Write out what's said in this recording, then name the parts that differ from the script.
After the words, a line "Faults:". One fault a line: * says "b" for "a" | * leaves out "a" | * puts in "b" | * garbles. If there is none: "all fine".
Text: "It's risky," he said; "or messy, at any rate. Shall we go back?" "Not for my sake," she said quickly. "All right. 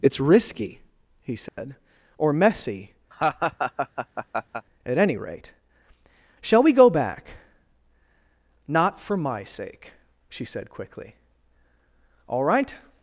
"It's risky," he said; "or messy, at any rate. Shall we go back?" "Not for my sake," she said quickly. "All right.
Faults:
all fine